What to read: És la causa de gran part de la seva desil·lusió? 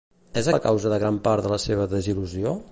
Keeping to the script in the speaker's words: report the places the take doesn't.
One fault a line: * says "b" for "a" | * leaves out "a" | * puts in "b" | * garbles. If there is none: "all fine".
all fine